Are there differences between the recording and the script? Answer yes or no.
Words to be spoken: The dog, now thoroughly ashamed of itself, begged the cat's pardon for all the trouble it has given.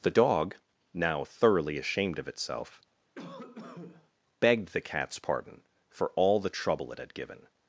yes